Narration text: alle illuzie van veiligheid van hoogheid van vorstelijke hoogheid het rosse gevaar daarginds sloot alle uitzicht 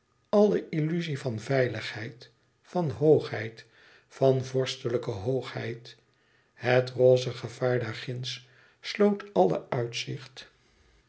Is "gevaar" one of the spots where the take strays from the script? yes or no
no